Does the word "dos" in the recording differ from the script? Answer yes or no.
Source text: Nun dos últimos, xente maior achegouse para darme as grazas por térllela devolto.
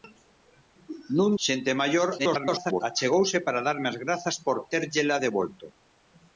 yes